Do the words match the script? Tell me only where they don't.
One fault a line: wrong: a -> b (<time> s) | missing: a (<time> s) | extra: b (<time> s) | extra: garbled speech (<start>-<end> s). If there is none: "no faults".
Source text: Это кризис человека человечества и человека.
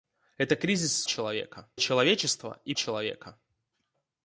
no faults